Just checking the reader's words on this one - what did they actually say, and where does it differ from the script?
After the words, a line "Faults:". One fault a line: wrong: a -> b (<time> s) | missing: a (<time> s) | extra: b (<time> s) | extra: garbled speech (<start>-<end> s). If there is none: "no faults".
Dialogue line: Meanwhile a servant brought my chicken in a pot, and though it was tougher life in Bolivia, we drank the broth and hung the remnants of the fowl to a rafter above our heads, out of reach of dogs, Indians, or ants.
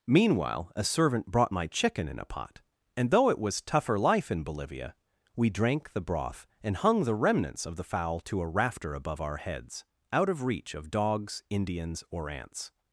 Meanwhile a servant brought my chicken in a pot, and though it was tougher life in Bolivia, we drank the broth and hung the remnants of the fowl to a rafter above our heads, out of reach of dogs, Indians, or ants.
Faults:
no faults